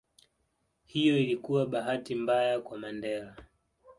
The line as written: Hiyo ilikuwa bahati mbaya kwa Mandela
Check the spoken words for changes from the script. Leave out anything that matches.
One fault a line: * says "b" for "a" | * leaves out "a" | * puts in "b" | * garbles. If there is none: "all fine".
all fine